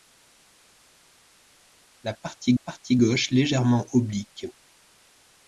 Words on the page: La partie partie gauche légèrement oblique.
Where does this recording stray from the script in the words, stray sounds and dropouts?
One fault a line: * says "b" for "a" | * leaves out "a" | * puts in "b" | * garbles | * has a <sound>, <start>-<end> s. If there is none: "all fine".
all fine